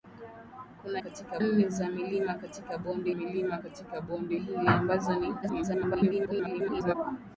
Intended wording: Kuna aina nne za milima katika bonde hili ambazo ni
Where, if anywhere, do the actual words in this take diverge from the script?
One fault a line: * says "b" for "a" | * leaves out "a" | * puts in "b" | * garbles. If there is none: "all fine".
* says "katika" for "aina"
* puts in "milima katika bonde"
* garbles